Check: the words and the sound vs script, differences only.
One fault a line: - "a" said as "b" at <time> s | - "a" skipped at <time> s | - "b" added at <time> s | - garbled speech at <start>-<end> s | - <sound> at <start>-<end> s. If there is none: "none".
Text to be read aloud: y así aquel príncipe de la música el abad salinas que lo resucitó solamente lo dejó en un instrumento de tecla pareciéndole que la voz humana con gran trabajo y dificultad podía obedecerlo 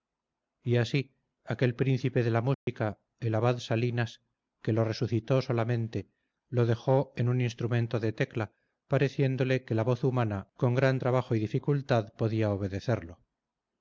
- dropout at 2.5-2.7 s